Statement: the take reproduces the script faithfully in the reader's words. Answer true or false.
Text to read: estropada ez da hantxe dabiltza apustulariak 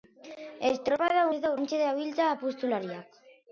true